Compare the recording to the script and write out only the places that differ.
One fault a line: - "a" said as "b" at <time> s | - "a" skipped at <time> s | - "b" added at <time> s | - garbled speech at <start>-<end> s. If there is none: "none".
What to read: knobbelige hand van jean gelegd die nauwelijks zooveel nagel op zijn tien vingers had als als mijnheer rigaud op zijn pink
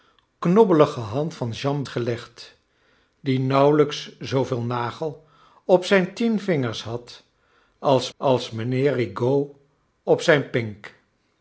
none